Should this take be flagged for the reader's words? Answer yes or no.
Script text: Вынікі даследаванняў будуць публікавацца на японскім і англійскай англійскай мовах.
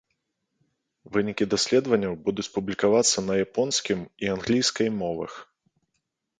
yes